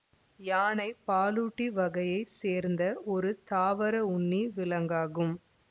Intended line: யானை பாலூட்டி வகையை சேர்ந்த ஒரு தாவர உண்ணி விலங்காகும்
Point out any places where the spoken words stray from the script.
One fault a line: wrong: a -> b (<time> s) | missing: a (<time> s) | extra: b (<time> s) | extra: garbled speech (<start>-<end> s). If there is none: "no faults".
no faults